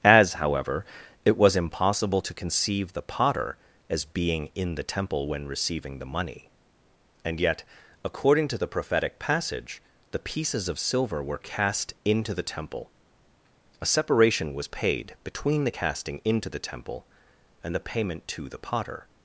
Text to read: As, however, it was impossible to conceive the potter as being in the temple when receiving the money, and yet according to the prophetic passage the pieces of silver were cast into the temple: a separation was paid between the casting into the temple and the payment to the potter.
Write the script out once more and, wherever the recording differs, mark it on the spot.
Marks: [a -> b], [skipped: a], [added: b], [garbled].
As, however, it was impossible to conceive the potter as being in the temple when receiving the money, and yet according to the prophetic passage the pieces of silver were cast into the temple: a separation was paid between the casting into the temple and the payment to the potter.